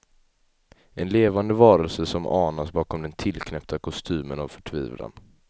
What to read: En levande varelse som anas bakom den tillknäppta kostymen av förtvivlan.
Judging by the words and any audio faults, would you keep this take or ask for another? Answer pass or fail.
pass